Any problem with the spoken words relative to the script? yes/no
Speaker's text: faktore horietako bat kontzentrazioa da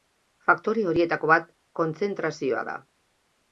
no